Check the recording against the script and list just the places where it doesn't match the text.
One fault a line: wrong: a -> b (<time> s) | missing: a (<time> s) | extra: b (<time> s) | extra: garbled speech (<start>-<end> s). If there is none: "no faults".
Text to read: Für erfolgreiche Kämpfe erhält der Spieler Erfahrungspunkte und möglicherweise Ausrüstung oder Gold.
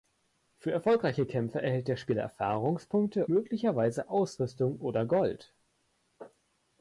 missing: und (3.3 s)